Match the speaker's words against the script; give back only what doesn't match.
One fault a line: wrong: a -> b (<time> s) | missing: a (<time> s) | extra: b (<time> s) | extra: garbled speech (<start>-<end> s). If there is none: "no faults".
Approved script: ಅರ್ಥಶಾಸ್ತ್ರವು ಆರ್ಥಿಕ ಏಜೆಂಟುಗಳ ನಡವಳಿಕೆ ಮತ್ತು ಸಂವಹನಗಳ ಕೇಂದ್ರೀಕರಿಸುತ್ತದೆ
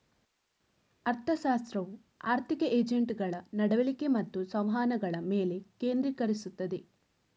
extra: ಮೇಲೆ (5.3 s)